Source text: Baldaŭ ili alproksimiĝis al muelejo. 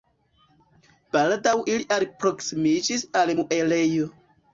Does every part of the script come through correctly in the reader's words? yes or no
yes